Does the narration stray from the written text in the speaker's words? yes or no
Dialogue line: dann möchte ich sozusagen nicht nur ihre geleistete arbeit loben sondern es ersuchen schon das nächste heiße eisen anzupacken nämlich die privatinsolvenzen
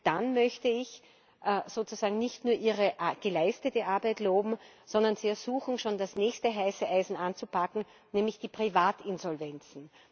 yes